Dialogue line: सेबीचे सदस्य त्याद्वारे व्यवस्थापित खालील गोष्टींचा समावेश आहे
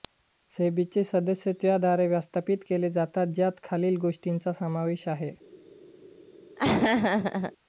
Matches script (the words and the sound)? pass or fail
fail